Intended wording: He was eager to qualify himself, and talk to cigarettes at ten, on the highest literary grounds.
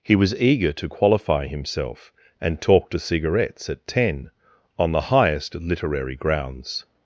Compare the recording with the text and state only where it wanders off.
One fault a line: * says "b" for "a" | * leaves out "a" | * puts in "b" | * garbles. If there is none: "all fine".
all fine